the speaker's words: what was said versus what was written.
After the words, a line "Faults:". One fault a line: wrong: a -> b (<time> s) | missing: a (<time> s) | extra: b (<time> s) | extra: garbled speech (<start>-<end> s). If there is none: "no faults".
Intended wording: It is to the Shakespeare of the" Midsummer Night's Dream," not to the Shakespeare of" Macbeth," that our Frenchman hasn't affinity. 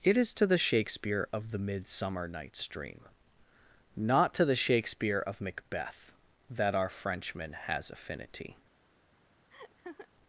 It is to the Shakespeare of the" Midsummer Night's Dream," not to the Shakespeare of" Macbeth," that our Frenchman has affinity.
Faults:
wrong: hasn't -> has (7.7 s)